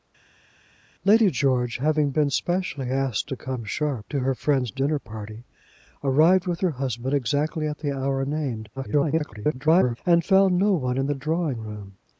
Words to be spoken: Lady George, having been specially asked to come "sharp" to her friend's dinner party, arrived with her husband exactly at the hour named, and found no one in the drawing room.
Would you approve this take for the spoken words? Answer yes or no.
no